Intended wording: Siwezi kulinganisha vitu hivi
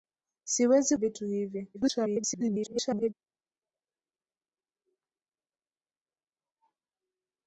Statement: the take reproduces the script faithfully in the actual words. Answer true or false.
false